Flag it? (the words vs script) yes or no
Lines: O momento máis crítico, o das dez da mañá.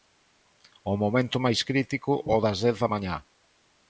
no